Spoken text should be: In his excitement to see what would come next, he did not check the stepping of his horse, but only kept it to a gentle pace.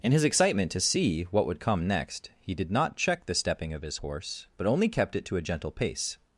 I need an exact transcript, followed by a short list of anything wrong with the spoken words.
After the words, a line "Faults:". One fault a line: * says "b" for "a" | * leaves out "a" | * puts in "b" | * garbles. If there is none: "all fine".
In his excitement to see what would come next, he did not check the stepping of his horse, but only kept it to a gentle pace.
Faults:
all fine